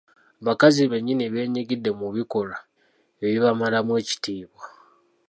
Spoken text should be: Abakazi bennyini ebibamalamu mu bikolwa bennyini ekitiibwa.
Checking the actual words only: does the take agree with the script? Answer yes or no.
no